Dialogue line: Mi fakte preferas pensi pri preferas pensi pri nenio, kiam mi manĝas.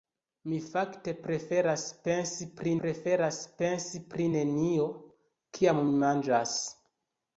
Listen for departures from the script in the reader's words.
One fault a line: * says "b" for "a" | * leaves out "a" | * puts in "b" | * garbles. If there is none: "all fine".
all fine